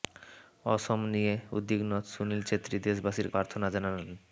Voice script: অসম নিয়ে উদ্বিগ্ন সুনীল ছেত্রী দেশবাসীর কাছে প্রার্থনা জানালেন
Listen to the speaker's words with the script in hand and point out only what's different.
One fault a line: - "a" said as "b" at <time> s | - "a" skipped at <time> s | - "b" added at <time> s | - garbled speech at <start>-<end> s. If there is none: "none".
- "কাছে" skipped at 3.3 s